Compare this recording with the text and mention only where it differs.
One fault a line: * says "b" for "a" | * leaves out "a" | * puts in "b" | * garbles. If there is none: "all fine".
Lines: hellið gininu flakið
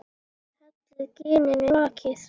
all fine